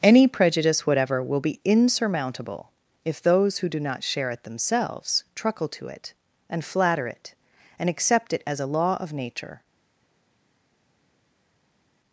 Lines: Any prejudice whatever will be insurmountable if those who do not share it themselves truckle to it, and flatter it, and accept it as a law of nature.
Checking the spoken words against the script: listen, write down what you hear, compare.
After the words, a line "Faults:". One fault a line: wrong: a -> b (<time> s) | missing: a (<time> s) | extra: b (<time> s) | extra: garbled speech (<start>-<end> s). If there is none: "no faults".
Any prejudice whatever will be insurmountable if those who do not share it themselves truckle to it, and flatter it, and accept it as a law of nature.
Faults:
no faults